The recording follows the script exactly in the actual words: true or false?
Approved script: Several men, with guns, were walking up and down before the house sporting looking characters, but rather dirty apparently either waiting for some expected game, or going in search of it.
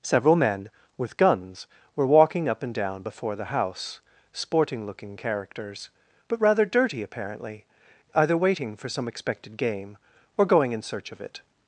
true